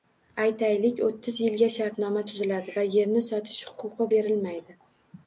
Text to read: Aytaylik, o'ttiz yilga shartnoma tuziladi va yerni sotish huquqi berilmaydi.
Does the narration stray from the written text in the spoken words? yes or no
no